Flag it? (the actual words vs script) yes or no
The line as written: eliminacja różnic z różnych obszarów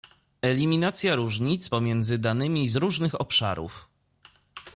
yes